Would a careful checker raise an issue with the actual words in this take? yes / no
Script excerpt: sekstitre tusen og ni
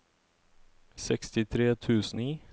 yes